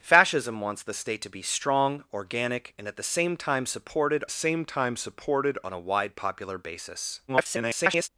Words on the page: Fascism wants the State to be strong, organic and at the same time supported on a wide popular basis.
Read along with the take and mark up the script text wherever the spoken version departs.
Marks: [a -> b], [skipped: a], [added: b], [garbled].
Fascism wants the State to be strong, organic and at the same time supported [added: same time supported] on a wide popular basis. [garbled]